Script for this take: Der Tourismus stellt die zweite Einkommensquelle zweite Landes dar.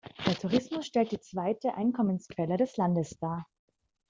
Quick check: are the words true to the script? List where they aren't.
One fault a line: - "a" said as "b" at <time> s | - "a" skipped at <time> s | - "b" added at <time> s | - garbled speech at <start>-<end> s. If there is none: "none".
- "zweite" said as "des" at 2.6 s